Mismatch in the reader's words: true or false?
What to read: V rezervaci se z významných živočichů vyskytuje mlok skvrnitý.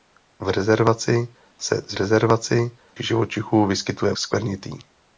true